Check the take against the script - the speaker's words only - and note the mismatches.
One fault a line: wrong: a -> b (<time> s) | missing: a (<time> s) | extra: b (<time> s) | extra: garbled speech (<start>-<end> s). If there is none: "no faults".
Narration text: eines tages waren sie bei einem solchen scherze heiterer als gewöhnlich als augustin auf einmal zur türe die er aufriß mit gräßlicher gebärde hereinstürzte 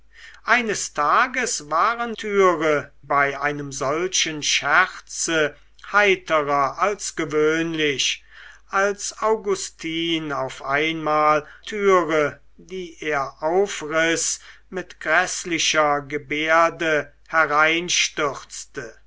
wrong: sie -> türe (2.1 s)
missing: zur (11.4 s)